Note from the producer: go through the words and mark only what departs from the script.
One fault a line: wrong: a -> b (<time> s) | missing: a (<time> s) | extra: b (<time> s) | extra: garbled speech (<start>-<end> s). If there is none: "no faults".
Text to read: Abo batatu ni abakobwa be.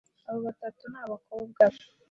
no faults